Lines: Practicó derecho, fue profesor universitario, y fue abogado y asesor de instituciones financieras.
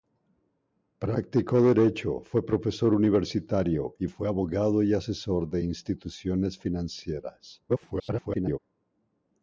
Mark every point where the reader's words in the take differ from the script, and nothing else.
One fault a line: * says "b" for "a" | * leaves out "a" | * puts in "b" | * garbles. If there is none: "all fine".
* garbles